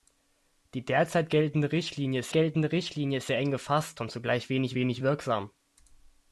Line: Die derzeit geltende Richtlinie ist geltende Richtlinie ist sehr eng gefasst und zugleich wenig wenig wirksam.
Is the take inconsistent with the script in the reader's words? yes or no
no